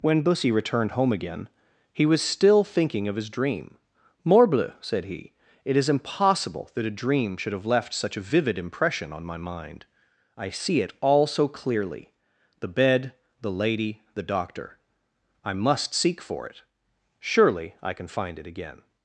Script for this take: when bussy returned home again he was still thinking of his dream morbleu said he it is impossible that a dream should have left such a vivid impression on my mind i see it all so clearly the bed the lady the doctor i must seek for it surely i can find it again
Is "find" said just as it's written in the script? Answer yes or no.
yes